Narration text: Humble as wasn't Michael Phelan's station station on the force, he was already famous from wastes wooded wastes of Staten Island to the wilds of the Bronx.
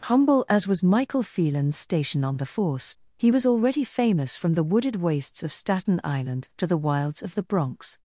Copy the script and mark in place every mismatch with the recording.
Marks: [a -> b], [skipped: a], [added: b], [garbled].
Humble as [wasn't -> was] Michael Phelan's station [skipped: station] on the force, he was already famous from [wastes -> the] wooded wastes of Staten Island to the wilds of the Bronx.